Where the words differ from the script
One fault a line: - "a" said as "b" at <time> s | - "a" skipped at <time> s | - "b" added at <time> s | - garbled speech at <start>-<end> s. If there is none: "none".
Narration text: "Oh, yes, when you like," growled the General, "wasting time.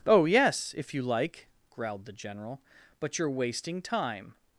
- "when" said as "if" at 0.8 s
- "but you're" added at 3.0 s